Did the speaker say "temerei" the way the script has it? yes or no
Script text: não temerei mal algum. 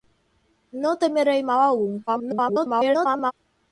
yes